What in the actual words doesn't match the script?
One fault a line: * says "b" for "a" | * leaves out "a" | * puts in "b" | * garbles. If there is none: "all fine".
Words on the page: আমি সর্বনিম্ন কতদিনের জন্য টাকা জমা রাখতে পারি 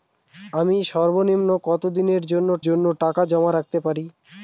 * puts in "জন্য"